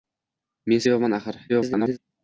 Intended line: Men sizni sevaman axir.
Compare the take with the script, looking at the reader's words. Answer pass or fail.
fail